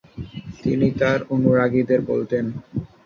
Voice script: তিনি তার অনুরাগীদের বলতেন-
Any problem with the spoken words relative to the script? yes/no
no